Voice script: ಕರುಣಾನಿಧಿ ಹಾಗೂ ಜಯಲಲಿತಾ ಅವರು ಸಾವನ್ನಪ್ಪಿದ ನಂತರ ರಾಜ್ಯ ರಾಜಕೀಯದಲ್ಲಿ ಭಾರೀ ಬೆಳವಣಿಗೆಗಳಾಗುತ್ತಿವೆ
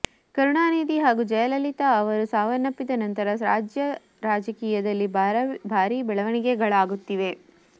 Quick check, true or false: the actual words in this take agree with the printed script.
true